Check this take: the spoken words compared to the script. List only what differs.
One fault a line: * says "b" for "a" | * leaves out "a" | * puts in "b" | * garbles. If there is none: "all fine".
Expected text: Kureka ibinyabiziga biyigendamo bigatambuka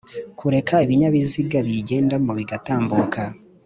all fine